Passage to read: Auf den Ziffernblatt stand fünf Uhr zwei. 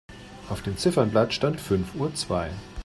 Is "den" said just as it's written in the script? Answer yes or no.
no